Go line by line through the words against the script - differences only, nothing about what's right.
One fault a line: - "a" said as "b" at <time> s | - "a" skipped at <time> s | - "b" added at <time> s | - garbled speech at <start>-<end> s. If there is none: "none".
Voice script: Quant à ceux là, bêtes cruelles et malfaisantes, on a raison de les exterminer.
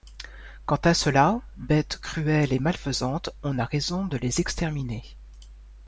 none